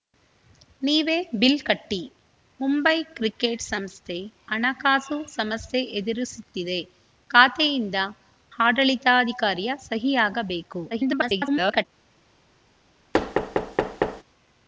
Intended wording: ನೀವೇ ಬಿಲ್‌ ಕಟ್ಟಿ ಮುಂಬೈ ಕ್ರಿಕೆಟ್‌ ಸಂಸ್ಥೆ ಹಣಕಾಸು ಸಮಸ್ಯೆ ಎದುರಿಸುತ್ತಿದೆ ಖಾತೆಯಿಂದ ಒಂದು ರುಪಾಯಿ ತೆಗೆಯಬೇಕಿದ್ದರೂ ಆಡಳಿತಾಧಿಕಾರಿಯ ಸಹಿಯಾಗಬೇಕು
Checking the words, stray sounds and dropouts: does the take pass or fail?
fail